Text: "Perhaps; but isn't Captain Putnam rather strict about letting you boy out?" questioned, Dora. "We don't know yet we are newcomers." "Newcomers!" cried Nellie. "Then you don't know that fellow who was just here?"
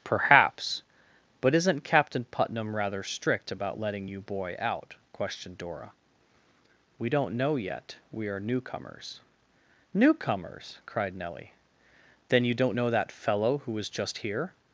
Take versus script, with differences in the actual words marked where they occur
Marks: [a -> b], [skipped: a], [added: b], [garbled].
"Perhaps; but isn't Captain Putnam rather strict about letting you boy out?" questioned, Dora. "We don't know yet we are newcomers." "Newcomers!" cried Nellie. "Then you don't know that fellow who was just here?"